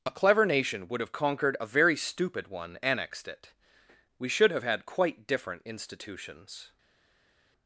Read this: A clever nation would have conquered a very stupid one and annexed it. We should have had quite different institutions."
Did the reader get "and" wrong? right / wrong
wrong